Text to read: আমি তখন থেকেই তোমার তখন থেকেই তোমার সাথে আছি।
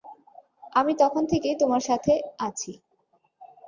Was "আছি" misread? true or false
false